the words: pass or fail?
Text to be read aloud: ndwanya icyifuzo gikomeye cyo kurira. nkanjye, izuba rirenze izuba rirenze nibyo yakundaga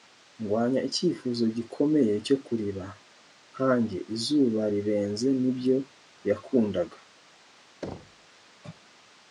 fail